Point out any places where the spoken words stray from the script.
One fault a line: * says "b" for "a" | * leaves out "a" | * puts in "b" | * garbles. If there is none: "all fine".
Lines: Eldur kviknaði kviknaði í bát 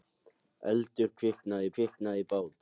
all fine